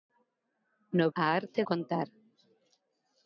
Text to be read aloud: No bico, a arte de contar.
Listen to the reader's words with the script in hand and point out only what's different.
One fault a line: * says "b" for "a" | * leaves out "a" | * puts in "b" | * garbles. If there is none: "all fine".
* leaves out "bico"
* leaves out "de"